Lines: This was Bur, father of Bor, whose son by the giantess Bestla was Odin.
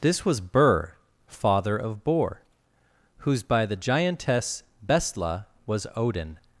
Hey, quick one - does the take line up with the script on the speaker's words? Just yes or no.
no